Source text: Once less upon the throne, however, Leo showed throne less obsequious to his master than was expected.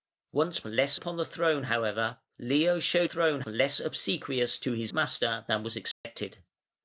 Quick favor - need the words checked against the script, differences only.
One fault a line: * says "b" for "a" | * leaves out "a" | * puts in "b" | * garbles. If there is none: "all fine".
all fine